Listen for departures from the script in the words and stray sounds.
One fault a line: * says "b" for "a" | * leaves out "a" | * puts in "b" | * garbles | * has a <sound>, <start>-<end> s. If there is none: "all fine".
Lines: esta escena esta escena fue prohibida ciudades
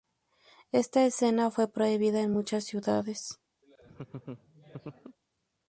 * says "fue prohibida en muchas" for "esta escena fue prohibida"
* has a laugh, 3.6-5.2 s